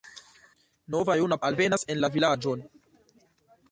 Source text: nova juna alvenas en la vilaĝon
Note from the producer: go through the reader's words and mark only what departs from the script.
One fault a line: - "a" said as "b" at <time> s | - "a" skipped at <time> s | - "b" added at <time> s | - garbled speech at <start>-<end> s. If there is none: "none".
none